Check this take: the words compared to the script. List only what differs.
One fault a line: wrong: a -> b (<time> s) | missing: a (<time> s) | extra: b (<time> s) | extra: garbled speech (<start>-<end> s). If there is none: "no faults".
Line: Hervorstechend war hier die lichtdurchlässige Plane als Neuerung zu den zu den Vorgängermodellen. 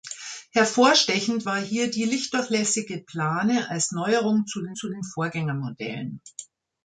no faults